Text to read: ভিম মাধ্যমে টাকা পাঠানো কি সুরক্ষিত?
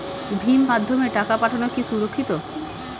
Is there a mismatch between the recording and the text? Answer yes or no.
no